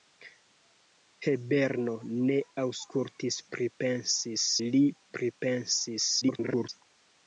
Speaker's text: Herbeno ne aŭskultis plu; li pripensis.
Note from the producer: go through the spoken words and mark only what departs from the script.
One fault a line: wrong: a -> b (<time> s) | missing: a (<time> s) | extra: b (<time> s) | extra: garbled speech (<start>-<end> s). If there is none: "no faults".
wrong: plu -> pripensis (3.6 s)
extra: garbled speech (6.2-6.7 s)